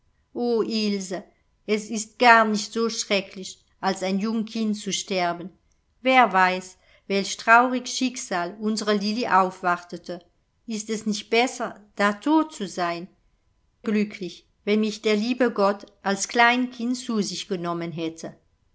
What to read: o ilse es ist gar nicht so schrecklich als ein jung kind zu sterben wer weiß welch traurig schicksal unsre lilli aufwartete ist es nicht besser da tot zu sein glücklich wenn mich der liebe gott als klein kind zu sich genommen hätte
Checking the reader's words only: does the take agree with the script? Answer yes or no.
yes